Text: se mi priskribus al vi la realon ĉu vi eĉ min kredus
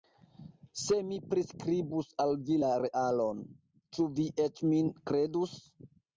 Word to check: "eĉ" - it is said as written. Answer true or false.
true